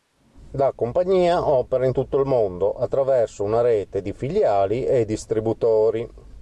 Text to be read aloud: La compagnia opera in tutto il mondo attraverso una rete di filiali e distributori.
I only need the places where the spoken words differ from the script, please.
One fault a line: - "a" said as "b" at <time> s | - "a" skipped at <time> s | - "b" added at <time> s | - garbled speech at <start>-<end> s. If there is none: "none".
none